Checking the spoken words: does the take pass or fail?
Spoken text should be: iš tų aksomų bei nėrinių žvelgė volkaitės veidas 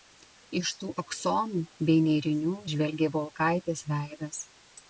pass